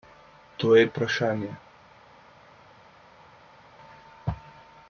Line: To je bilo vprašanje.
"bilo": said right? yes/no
no